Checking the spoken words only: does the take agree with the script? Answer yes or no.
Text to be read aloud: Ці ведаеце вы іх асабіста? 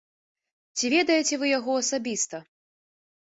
no